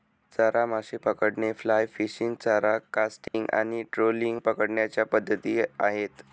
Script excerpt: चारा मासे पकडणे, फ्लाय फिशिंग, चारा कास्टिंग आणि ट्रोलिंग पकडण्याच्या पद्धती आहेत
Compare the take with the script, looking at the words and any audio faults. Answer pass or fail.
fail